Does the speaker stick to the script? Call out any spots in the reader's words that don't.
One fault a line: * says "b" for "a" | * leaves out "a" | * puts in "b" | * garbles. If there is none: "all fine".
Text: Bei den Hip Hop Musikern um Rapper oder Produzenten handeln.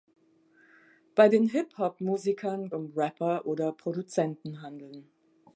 all fine